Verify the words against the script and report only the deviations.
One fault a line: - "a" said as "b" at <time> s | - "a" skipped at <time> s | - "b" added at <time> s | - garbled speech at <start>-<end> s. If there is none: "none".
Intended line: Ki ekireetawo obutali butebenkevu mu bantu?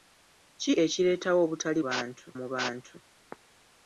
- "butebenkevu" said as "bantu" at 1.9 s